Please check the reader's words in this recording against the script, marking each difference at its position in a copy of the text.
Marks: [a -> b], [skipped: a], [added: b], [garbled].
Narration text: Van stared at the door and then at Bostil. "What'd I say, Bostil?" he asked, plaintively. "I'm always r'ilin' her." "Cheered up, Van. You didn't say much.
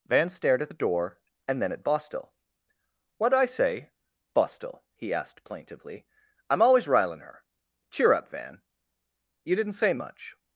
Van stared at the door and then at Bostil. "What'd I say, Bostil?" he asked, plaintively. "I'm always r'ilin' her." ["Cheered -> Cheer] up, Van. You didn't say much.